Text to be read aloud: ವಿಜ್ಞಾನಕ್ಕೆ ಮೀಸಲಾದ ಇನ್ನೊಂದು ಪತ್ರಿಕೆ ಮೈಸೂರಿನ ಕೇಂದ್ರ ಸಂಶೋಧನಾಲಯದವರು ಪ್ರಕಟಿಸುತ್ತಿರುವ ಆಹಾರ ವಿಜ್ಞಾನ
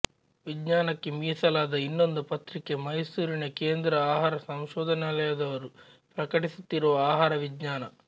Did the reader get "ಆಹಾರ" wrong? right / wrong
right